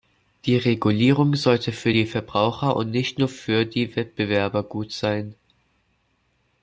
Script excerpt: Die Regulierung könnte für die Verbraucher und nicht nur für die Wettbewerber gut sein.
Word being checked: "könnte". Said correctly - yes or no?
no